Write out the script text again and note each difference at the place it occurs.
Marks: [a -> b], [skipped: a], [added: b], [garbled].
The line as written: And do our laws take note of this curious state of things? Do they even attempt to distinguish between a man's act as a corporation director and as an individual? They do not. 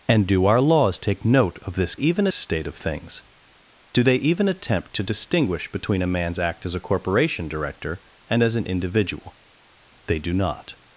And do our laws take note of this [curious -> even] state of things? Do they even attempt to distinguish between a man's act as a corporation director and as an individual? They do not.